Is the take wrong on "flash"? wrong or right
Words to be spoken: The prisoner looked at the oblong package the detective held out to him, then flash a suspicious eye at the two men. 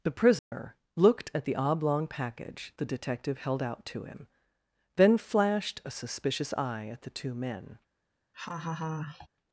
wrong